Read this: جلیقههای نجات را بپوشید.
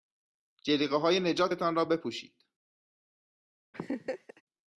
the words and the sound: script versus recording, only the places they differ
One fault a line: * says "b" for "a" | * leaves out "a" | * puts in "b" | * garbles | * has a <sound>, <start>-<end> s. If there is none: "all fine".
* puts in "تان"
* has a laugh, 3.7-4.4 s